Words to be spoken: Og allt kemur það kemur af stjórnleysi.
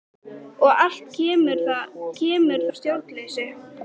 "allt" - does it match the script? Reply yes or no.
yes